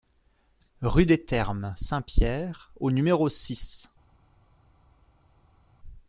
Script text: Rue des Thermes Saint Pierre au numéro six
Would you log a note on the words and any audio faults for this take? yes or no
no